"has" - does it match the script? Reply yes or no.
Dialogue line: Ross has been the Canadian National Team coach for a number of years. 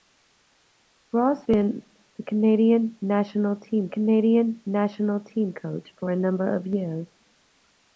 no